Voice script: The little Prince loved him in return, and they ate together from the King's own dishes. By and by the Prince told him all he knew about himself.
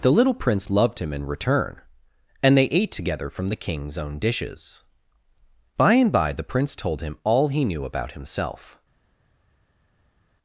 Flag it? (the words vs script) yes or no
no